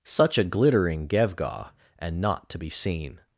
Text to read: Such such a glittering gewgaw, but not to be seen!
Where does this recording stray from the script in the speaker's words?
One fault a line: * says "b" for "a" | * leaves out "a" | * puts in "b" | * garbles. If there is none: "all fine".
* leaves out "such"
* says "and" for "but"